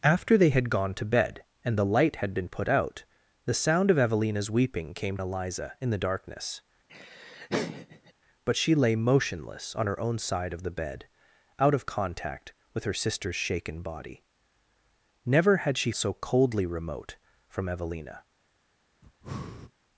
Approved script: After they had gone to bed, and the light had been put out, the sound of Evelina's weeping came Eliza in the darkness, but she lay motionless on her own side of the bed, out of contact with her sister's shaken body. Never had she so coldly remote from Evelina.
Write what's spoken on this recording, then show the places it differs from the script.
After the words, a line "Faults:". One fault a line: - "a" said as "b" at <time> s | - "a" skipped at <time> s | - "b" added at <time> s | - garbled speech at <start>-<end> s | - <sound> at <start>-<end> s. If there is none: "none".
After they had gone to bed, and the light had been put out, the sound of Evelina's weeping came Eliza in the darkness, but she lay motionless on her own side of the bed, out of contact with her sister's shaken body. Never had she so coldly remote from Evelina.
Faults:
- laugh at 6.9-8.1 s
- breath at 19.0-19.7 s